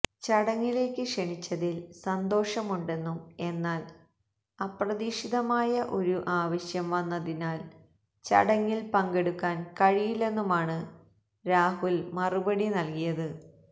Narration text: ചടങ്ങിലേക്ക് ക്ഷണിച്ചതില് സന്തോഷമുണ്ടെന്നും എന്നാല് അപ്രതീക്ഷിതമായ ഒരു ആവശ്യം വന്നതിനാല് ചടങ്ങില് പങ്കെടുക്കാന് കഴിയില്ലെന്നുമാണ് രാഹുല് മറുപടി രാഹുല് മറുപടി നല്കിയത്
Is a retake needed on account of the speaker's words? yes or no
yes